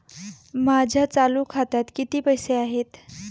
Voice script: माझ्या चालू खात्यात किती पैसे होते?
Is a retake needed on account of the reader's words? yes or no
yes